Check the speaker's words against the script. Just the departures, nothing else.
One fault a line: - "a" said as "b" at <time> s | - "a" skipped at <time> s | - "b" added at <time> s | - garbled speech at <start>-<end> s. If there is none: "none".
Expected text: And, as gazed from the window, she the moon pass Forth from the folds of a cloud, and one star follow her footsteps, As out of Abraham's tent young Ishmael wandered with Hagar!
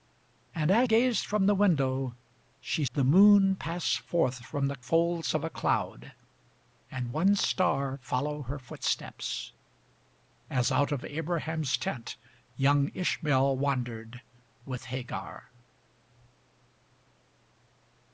none